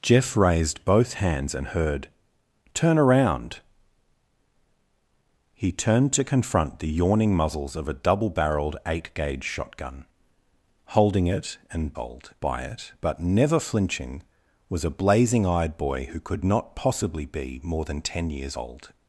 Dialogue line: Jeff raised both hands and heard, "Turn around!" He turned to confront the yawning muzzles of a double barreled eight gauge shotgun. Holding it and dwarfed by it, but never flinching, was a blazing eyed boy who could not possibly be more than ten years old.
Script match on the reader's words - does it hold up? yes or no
no